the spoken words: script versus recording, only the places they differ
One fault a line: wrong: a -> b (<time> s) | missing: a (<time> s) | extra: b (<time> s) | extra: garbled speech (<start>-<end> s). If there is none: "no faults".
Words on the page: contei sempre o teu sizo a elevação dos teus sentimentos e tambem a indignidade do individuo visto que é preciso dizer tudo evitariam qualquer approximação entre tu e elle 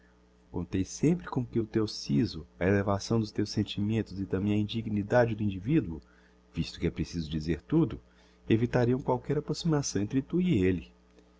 extra: com que (1.3 s)